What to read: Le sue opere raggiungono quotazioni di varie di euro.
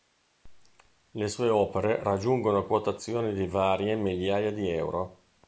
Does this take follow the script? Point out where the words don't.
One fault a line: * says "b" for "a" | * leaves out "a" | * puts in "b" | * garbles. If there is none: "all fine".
* puts in "migliaia"